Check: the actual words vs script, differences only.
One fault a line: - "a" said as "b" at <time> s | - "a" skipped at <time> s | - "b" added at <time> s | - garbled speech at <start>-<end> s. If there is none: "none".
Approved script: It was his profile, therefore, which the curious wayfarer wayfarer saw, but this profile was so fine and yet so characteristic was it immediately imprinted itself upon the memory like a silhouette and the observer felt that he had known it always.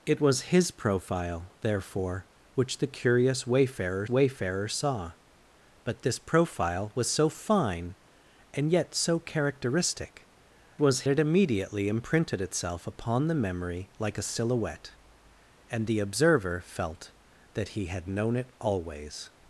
none